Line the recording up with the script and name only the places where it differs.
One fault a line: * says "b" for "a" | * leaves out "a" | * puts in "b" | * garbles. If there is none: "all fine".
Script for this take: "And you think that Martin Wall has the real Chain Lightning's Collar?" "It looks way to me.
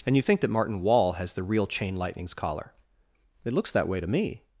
* puts in "that"